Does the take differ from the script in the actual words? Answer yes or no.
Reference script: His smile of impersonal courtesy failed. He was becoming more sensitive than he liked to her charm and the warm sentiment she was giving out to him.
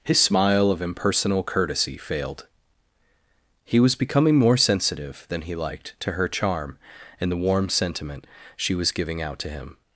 no